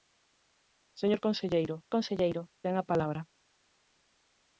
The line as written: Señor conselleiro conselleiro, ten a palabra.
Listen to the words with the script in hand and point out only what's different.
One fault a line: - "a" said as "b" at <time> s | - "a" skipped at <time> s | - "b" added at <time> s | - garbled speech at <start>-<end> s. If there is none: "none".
none